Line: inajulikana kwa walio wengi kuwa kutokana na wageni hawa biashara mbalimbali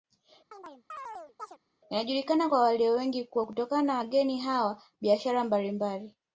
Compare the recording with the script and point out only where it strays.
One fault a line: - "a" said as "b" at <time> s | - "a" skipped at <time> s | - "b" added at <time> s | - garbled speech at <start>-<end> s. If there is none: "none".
none